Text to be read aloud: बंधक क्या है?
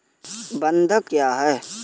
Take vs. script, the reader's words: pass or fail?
pass